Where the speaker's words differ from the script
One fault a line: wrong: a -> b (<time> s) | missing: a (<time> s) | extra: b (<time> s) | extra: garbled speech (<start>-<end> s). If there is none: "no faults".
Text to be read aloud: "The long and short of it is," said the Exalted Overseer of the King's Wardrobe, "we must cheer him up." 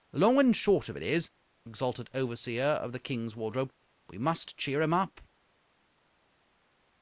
missing: said the (1.3 s)